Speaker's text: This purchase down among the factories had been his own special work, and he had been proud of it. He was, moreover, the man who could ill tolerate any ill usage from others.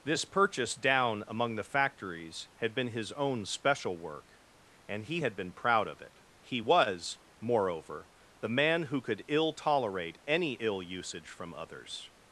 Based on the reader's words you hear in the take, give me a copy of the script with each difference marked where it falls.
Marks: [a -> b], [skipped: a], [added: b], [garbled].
This purchase down among the factories had been his own special work, and he had been proud of it. He was, moreover, the man who could ill tolerate any ill usage from others.